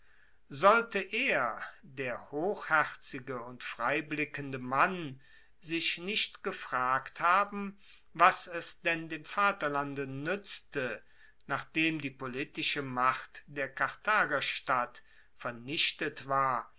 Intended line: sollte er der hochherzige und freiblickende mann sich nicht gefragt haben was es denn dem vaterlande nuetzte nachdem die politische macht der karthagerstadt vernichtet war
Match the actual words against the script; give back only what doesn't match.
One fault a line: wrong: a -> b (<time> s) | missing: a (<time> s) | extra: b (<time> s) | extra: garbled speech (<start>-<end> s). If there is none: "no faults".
no faults